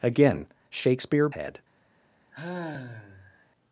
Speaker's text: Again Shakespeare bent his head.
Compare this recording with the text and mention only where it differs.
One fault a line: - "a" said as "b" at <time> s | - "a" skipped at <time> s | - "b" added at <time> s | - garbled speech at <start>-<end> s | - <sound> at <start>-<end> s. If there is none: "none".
- "bent his" skipped at 1.3 s
- sigh at 2.3-3.5 s